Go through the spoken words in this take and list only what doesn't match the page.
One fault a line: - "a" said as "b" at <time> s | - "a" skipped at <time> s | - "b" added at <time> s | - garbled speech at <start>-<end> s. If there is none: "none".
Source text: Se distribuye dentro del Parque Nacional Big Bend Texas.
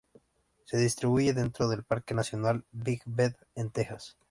- "en" added at 3.5 s